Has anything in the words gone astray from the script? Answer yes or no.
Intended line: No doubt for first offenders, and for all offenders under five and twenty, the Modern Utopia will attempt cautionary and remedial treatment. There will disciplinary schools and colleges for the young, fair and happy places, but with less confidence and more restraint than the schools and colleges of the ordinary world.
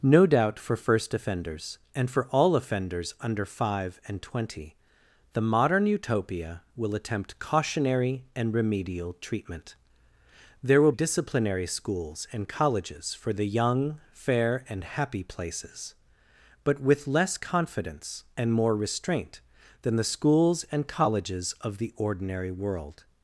no